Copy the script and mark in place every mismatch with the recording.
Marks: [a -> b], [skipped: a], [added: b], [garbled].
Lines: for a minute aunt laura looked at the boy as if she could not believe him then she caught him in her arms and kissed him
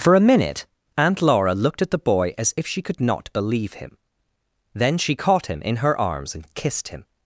for a minute aunt laura looked at the boy as if she could not believe him then she caught him in her arms and kissed him